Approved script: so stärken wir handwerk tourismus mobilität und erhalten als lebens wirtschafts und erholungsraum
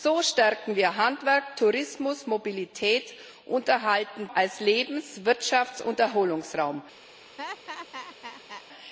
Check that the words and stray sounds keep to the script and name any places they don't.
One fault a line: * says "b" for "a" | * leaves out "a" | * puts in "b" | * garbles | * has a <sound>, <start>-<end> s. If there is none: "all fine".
* has a laugh, 7.4-8.6 s